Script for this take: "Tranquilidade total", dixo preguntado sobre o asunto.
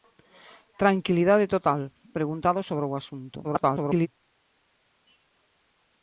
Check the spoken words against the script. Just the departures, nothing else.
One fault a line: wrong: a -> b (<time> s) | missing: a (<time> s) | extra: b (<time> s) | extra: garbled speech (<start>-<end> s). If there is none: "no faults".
missing: dixo (1.8 s)
extra: garbled speech (3.4-4.1 s)